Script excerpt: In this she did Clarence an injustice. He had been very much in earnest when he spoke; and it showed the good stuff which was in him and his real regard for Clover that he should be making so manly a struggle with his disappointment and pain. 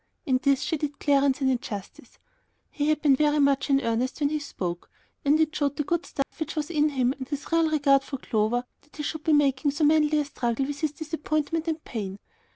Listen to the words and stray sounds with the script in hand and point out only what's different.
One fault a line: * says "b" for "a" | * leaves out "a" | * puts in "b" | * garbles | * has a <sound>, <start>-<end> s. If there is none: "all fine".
* has a dropout, 6.2-6.3 s